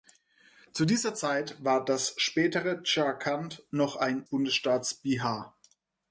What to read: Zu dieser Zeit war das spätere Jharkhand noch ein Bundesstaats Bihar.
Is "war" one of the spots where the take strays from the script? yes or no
no